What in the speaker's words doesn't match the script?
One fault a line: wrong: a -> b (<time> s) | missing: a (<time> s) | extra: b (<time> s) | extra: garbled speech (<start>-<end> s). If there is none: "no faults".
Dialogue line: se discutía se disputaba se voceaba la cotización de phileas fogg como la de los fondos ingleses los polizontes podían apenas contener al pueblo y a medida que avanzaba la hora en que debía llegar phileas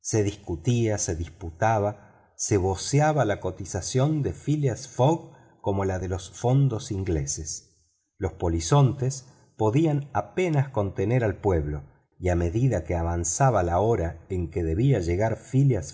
no faults